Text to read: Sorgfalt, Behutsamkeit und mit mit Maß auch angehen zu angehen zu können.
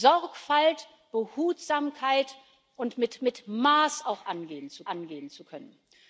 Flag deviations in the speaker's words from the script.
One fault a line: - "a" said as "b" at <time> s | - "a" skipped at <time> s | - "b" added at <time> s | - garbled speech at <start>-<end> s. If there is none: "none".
none